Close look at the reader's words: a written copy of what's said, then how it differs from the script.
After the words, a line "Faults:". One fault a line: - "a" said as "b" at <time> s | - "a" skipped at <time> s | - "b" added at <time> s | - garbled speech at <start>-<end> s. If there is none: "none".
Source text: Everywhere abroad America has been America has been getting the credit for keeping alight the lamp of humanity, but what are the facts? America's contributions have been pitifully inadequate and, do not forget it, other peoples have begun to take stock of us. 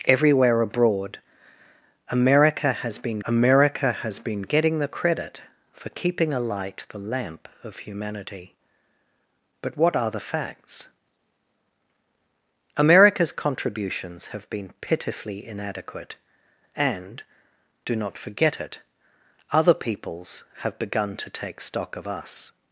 Everywhere abroad America has been America has been getting the credit for keeping alight the lamp of humanity, but what are the facts? America's contributions have been pitifully inadequate and, do not forget it, other peoples have begun to take stock of us.
Faults:
none